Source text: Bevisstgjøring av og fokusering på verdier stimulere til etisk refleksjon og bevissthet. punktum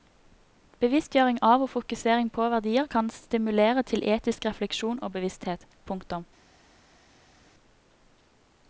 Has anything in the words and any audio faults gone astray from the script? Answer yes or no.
yes